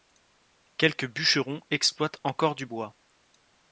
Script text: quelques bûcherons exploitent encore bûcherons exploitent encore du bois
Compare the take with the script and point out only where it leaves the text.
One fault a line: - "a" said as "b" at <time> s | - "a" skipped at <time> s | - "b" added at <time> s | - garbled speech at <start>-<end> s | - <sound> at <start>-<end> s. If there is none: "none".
- "bûcherons exploitent encore" skipped at 2.5 s